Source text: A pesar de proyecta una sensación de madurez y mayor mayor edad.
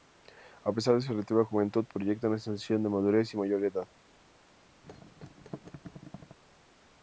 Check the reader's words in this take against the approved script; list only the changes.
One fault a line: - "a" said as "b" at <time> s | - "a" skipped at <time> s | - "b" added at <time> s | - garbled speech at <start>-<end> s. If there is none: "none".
- "su relativa juventud" added at 1.0 s
- "mayor" skipped at 3.6 s